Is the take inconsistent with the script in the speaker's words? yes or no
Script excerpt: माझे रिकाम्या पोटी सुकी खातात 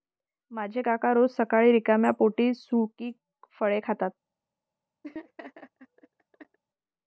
yes